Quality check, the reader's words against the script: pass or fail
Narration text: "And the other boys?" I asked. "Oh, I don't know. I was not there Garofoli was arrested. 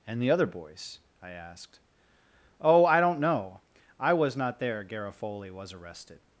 pass